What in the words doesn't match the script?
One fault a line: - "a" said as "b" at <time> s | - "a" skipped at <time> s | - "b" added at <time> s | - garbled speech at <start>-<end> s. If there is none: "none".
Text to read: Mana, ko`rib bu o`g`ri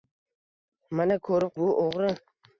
none